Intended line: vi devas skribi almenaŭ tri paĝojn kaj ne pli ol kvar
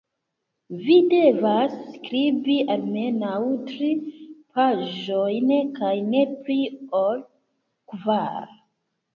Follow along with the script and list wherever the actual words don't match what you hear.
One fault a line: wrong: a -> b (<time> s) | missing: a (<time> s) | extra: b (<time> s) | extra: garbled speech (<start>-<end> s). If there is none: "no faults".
no faults